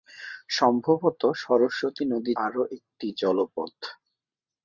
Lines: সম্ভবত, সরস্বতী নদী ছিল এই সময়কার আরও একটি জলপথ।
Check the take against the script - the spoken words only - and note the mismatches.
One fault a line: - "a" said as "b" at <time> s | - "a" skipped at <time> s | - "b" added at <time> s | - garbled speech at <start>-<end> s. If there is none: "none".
- "ছিল এই সময়কার" skipped at 2.3 s